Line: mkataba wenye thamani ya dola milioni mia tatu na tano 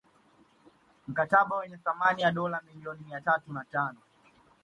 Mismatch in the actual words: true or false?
false